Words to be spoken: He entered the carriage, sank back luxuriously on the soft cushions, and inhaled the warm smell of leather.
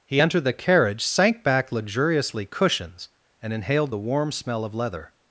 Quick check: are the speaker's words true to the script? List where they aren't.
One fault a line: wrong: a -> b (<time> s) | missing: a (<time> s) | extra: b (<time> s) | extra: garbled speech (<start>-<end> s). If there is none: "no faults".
missing: on the soft (2.5 s)